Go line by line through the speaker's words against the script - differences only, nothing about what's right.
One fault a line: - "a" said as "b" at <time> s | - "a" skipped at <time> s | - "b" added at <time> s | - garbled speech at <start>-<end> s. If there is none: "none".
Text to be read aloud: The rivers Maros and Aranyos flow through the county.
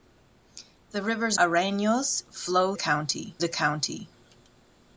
- "Maros and" skipped at 1.4 s
- "through" said as "county" at 2.7 s